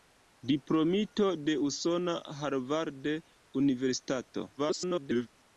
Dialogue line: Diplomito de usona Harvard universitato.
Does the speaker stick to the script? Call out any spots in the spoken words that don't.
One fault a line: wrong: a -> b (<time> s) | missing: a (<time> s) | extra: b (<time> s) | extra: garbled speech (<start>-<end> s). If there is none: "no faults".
extra: garbled speech (4.6-5.3 s)